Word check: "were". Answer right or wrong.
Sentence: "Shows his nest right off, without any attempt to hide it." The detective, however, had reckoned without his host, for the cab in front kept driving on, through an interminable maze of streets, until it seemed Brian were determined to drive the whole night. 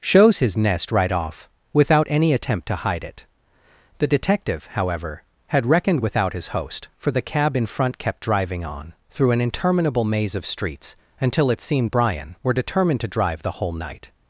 right